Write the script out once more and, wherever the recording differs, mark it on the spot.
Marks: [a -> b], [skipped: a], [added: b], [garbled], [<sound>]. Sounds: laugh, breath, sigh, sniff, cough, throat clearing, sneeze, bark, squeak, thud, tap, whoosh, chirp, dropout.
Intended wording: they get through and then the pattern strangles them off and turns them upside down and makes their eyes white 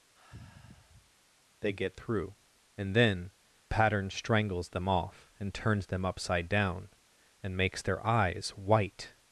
[sigh] they get through and then [skipped: the] pattern strangles them off and turns them upside down and makes their eyes white